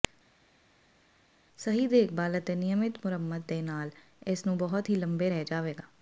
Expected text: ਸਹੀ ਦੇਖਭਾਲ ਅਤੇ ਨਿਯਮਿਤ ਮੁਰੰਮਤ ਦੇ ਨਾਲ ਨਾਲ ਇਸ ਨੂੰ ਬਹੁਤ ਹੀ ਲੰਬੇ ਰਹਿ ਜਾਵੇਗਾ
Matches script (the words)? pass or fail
fail